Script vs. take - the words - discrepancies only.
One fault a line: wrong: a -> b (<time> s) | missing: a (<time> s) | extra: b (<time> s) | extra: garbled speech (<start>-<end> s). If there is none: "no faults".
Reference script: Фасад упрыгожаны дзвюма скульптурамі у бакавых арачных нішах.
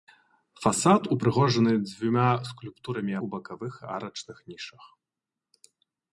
no faults